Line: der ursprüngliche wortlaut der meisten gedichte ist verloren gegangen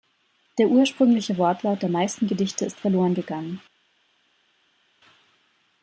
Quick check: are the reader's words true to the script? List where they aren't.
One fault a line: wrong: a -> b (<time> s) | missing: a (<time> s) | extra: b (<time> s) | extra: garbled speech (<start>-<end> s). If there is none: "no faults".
no faults